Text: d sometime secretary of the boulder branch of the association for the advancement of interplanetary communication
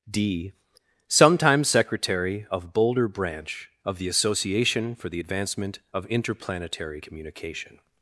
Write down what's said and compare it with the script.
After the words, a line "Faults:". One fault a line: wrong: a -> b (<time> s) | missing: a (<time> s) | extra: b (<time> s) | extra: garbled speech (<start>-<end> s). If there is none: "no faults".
d sometime secretary of boulder branch of the association for the advancement of interplanetary communication
Faults:
missing: the (2.7 s)